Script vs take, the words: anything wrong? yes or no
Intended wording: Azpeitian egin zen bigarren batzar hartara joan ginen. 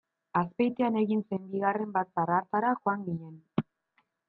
no